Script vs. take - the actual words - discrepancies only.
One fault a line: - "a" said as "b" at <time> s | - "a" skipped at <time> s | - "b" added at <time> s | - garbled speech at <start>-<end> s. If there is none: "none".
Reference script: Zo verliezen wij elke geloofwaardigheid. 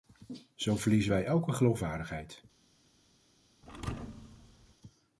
none